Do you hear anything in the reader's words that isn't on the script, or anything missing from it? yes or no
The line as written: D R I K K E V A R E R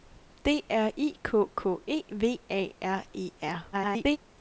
yes